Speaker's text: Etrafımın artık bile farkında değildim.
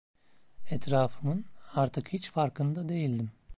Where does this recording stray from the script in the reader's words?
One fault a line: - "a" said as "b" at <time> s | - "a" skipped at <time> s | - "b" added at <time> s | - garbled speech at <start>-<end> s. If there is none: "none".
- "bile" said as "hiç" at 2.1 s